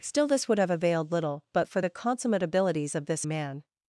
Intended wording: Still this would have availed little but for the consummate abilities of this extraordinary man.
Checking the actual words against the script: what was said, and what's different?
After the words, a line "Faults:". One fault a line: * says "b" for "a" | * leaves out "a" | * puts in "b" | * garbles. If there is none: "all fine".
Still this would have availed little but for the consummate abilities of this man.
Faults:
* leaves out "extraordinary"